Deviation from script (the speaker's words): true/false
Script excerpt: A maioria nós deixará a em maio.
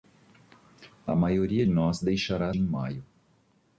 false